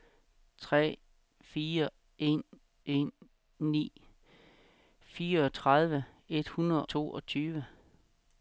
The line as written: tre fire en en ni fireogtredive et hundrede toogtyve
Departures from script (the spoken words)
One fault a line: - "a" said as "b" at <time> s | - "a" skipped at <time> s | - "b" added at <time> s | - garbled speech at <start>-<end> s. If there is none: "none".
none